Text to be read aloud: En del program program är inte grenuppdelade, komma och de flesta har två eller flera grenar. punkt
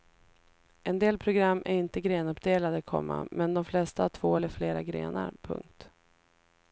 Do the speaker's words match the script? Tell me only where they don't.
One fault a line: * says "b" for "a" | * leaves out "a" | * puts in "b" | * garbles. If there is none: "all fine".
* leaves out "program"
* says "men" for "och"